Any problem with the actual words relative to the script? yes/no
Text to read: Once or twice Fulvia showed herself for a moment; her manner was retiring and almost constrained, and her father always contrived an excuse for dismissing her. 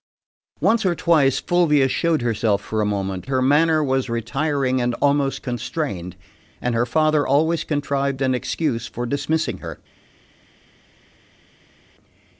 no